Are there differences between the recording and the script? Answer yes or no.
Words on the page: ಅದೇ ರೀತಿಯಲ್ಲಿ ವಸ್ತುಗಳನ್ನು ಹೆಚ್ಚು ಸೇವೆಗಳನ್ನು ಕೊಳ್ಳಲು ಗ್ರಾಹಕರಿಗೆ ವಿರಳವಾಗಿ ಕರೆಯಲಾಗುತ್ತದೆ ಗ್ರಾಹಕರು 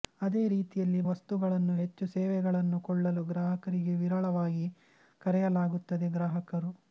no